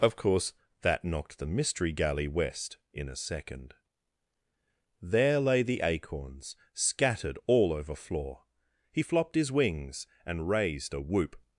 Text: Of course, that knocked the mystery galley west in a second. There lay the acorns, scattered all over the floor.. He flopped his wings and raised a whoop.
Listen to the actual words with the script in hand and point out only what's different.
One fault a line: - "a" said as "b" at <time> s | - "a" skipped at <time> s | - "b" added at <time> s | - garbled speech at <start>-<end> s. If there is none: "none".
- "the" skipped at 8.0 s